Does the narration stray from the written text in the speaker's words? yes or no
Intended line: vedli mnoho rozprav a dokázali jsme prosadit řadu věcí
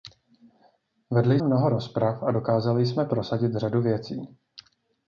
no